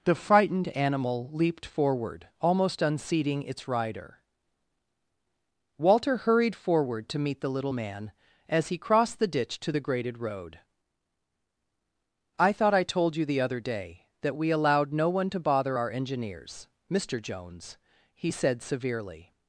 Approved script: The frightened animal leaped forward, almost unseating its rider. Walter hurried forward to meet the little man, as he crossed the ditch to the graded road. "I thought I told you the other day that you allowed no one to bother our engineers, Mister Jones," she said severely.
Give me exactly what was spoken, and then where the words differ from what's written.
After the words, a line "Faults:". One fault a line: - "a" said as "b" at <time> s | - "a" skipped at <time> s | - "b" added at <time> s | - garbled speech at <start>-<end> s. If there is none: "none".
The frightened animal leaped forward, almost unseating its rider. Walter hurried forward to meet the little man, as he crossed the ditch to the graded road. "I thought I told you the other day that we allowed no one to bother our engineers, Mister Jones," he said severely.
Faults:
- "you" said as "we" at 14.4 s
- "she" said as "he" at 18.1 s